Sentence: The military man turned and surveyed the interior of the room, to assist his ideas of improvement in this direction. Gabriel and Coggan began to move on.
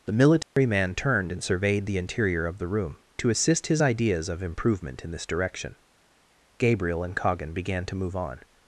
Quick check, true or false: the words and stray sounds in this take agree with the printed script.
false